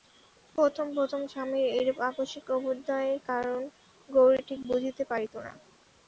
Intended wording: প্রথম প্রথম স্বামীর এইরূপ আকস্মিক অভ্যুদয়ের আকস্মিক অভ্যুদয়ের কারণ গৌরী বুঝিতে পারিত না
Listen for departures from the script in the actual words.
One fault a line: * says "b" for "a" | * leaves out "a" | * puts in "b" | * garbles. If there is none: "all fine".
* leaves out "আকস্মিক অভ্যুদয়ের"
* puts in "ঠিক"